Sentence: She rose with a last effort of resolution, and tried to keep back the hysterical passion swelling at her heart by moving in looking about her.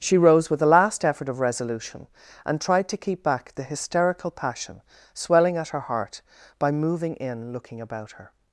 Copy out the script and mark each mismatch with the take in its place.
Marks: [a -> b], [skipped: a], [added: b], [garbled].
She rose with a last effort of resolution, and tried to keep back the hysterical passion swelling at her heart by moving in looking about her.